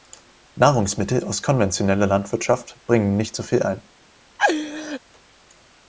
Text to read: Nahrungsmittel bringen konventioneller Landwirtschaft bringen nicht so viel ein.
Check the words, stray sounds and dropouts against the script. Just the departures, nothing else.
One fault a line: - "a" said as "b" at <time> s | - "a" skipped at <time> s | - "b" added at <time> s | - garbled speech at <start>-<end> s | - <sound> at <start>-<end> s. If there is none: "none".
- "bringen" said as "aus" at 1.2 s
- laugh at 4.4-5.0 s